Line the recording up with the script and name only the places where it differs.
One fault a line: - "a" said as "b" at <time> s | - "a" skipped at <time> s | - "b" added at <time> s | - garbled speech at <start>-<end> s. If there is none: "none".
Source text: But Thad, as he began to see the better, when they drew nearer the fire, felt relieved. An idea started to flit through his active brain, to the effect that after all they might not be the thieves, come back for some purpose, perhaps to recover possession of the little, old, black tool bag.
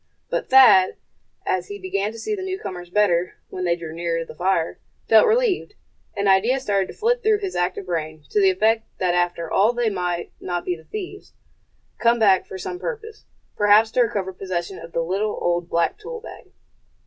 - "newcomers" added at 2.4 s